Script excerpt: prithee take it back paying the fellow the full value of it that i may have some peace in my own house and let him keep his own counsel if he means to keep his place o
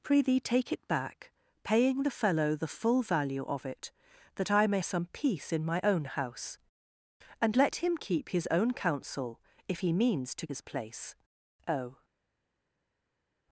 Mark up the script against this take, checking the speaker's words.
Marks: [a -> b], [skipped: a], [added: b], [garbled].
prithee take it back paying the fellow the full value of it that i may [skipped: have] some peace in my own house and let him keep his own counsel if he means to [skipped: keep] his place o